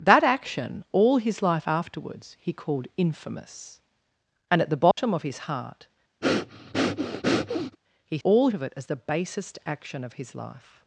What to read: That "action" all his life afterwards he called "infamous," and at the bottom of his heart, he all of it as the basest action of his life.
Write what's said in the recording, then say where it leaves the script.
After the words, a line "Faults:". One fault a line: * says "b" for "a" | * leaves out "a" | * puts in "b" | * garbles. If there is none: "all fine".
That "action" all his life afterwards he called "infamous," and at the bottom of his heart, he all of it as the basest action of his life.
Faults:
all fine